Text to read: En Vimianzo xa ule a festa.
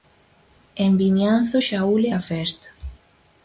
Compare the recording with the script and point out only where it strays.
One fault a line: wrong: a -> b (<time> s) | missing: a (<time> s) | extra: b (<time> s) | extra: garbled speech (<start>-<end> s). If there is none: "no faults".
no faults